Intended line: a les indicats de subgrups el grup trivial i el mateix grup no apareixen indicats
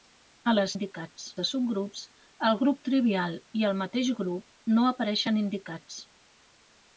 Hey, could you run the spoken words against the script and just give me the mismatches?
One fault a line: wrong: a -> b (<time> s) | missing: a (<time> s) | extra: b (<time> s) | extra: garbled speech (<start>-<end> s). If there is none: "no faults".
no faults